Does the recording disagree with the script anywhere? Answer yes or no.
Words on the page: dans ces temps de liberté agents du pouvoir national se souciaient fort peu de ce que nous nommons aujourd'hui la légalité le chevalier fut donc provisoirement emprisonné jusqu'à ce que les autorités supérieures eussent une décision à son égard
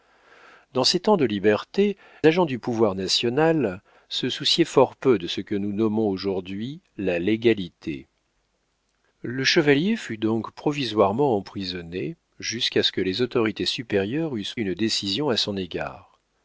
no